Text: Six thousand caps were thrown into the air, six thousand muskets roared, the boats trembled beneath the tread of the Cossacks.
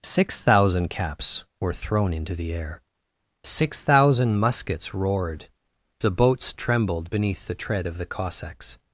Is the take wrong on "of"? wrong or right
right